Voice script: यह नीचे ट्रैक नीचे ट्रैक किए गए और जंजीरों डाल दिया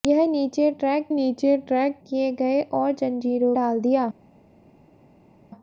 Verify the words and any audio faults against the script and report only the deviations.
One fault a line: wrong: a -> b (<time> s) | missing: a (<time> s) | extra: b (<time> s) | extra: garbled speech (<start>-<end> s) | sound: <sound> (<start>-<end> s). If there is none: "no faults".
no faults